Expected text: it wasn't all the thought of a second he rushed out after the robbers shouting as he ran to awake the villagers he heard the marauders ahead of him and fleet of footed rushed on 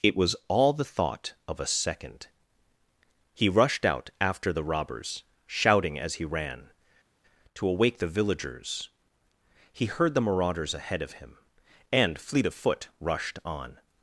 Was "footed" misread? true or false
true